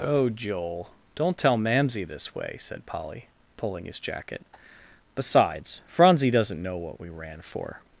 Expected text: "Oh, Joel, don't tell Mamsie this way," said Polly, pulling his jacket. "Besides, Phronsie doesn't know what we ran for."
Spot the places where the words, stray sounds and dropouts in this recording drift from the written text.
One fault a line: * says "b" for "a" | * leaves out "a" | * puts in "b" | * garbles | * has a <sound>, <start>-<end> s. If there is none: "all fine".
all fine